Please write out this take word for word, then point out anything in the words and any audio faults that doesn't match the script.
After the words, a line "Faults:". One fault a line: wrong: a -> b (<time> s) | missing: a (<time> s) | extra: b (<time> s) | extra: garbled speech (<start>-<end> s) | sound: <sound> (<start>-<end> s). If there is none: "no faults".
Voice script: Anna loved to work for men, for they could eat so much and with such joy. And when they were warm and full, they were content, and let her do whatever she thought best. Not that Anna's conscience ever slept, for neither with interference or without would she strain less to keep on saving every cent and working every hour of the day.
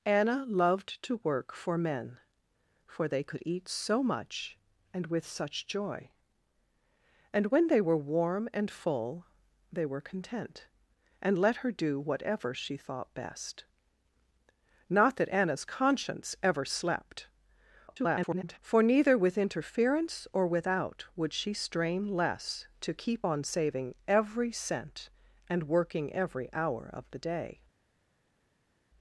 Anna loved to work for men, for they could eat so much and with such joy. And when they were warm and full, they were content, and let her do whatever she thought best. Not that Anna's conscience ever slept, [garbled] for neither with interference or without would she strain less to keep on saving every cent and working every hour of the day.
Faults:
extra: garbled speech (17.9-18.6 s)